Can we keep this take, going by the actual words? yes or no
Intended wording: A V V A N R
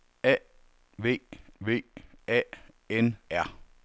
yes